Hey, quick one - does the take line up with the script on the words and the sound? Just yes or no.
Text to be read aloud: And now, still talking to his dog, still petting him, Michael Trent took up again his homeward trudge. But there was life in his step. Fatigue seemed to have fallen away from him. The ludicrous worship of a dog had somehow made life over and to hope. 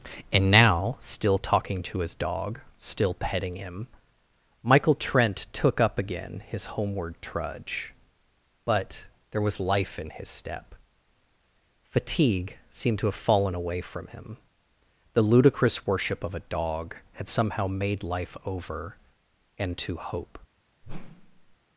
no